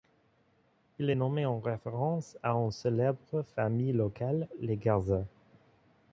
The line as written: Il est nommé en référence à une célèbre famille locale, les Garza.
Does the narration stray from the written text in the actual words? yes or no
no